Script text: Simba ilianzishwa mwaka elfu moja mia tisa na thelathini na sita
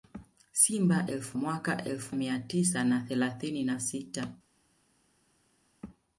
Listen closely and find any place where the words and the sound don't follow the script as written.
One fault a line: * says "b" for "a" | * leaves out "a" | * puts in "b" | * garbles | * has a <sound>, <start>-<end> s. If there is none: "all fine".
* says "elfu" for "ilianzishwa"
* leaves out "moja"